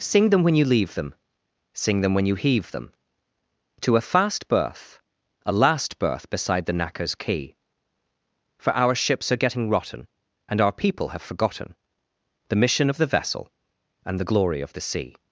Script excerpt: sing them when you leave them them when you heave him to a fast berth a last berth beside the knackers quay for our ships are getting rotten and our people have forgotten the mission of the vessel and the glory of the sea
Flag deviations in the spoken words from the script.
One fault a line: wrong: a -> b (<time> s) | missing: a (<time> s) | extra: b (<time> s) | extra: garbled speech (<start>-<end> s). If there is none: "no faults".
extra: sing (1.7 s)
wrong: him -> them (2.7 s)